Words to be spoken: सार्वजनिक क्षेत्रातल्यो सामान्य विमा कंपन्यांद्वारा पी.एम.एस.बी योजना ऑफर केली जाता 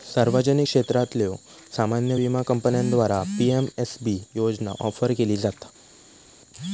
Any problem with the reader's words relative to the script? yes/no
no